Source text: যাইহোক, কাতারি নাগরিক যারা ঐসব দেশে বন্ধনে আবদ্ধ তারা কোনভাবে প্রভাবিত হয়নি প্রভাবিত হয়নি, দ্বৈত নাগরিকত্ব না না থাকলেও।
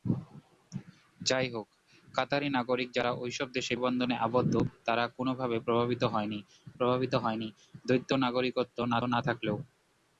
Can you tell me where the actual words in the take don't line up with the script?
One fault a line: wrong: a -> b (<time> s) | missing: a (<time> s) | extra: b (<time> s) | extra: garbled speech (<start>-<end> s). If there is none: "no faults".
no faults